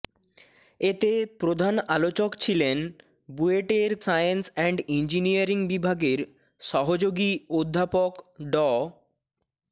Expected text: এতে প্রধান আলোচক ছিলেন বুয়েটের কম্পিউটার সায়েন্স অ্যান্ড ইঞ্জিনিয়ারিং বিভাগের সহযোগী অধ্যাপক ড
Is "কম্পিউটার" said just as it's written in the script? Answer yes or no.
no